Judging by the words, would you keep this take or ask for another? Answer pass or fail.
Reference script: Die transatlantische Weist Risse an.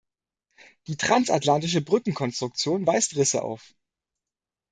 fail